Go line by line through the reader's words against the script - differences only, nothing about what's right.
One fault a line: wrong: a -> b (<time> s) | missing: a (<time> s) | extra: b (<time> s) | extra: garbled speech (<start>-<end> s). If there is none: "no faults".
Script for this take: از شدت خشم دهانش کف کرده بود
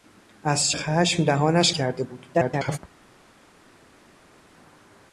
missing: شدت (0.7 s)
missing: کف (1.7 s)
extra: garbled speech (2.3-2.8 s)